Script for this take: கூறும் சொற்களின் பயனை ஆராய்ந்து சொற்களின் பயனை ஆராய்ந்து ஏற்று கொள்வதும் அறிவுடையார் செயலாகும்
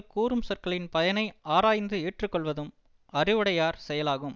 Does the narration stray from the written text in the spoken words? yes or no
yes